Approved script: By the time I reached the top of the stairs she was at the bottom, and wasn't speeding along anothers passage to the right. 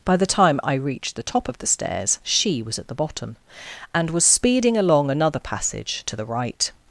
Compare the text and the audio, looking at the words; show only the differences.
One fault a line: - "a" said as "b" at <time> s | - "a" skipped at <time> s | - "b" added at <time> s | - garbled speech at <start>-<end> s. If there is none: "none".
- "wasn't" said as "was" at 4.1 s
- "anothers" said as "another" at 5.1 s